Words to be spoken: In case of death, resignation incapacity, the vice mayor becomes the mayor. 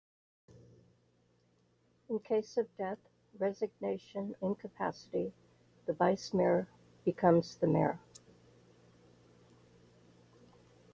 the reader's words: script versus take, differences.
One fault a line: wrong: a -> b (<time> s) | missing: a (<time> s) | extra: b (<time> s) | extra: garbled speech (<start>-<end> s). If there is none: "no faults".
no faults